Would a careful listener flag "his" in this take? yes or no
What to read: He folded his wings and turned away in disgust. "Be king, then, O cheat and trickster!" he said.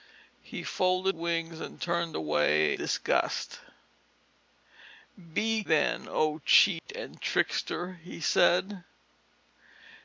yes